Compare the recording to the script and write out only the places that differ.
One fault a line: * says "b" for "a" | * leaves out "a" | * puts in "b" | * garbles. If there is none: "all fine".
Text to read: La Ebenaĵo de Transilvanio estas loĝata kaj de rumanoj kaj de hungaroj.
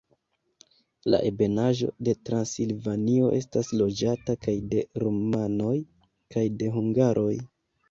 all fine